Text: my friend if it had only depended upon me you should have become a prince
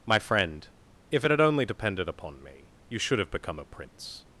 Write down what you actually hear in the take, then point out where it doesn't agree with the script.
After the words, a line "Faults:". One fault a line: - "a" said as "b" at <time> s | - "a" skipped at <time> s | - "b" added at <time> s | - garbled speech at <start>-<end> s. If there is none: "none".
my friend if it had only depended upon me you should have become a prince
Faults:
none